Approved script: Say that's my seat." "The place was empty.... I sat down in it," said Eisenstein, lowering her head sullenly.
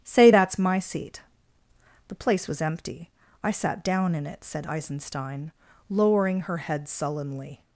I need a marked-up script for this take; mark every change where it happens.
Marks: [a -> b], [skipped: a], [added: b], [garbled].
Say that's my seat." "The place was empty.... I sat down in it," said Eisenstein, lowering her head sullenly.